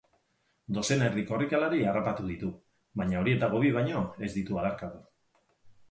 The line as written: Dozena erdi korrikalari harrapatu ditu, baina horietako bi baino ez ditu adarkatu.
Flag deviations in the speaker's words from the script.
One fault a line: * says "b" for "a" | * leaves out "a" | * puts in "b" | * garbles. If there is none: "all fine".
all fine